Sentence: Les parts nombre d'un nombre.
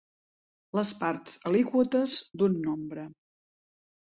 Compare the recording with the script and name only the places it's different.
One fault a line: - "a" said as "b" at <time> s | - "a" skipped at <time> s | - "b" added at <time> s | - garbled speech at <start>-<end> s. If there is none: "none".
- "nombre" said as "alíquotes" at 1.5 s